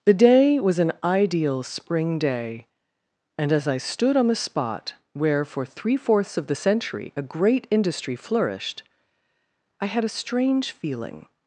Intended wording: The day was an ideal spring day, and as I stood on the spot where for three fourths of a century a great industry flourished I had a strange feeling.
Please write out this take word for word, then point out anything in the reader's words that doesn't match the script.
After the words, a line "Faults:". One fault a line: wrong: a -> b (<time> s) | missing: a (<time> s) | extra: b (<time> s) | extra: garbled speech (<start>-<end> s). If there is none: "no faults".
The day was an ideal spring day, and as I stood on the spot where for three fourths of the century a great industry flourished I had a strange feeling.
Faults:
wrong: a -> the (6.5 s)